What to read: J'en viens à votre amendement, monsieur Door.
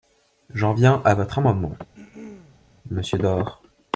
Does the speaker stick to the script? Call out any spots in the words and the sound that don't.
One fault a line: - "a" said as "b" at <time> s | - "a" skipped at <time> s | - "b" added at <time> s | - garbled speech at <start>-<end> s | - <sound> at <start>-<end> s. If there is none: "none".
- throat clearing at 1.9-2.6 s